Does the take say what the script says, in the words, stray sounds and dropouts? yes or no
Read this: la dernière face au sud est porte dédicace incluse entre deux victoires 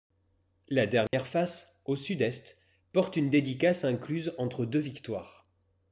no